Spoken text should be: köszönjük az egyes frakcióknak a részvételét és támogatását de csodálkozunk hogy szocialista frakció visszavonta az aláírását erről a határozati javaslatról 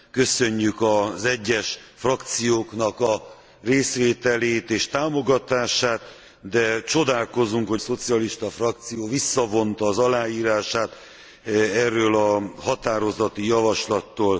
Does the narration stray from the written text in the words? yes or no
no